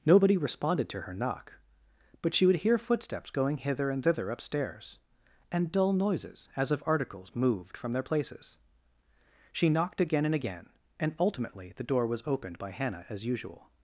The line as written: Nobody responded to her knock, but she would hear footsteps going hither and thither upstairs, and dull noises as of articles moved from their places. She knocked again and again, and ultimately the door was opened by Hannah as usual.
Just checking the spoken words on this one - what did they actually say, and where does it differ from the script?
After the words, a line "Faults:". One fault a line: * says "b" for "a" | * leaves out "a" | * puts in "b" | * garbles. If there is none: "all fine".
Nobody responded to her knock, but she would hear footsteps going hither and thither upstairs, and dull noises as of articles moved from their places. She knocked again and again, and ultimately the door was opened by Hannah as usual.
Faults:
all fine